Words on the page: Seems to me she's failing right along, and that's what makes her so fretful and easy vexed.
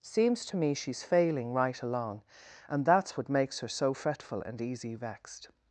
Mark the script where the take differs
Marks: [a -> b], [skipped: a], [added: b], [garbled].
Seems to me she's failing right along, and that's what makes her so fretful and easy vexed.